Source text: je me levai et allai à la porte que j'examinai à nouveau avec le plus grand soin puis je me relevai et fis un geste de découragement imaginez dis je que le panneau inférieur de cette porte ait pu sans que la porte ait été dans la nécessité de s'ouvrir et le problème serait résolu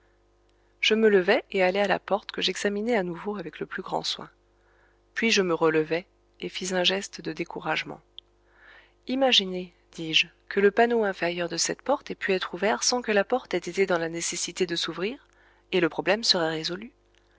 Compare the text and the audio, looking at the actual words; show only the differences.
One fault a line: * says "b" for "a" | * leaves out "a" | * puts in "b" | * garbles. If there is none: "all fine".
* puts in "être ouvert"